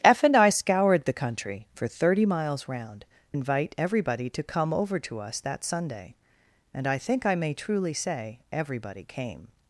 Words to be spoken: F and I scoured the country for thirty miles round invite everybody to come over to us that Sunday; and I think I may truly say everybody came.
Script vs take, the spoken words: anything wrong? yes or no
no